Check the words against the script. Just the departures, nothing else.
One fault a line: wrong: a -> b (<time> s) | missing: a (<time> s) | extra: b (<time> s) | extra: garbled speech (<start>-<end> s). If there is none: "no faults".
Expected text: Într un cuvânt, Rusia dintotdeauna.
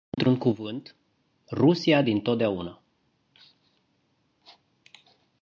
no faults